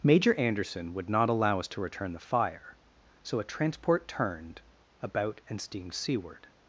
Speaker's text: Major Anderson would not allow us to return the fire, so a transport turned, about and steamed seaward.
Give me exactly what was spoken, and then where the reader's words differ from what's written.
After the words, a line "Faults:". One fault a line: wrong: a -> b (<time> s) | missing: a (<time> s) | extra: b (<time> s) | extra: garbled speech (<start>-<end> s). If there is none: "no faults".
Major Anderson would not allow us to return the fire, so a transport turned, about and steamed seaward.
Faults:
no faults